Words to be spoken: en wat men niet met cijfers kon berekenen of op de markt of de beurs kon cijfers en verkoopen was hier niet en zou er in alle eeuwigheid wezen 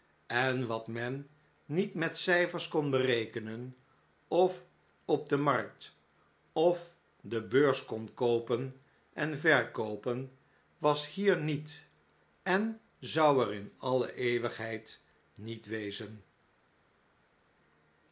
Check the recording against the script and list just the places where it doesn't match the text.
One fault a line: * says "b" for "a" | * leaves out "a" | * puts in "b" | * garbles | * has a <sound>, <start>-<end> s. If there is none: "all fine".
* says "koopen" for "cijfers"
* puts in "niet"